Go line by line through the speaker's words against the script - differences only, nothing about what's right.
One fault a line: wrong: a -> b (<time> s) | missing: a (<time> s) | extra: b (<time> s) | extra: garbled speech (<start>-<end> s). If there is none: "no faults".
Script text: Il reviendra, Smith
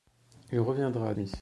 no faults